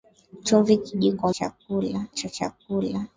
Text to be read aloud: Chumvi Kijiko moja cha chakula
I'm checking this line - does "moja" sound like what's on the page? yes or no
no